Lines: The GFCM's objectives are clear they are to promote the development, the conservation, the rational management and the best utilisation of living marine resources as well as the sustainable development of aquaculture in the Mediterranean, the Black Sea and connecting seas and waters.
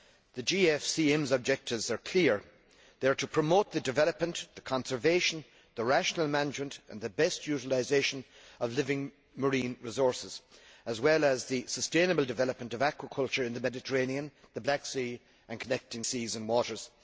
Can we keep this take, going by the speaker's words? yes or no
yes